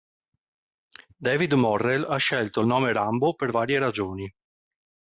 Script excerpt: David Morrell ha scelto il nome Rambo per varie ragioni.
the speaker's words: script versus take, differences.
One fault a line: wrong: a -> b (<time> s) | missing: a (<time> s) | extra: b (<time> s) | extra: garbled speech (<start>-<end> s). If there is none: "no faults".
no faults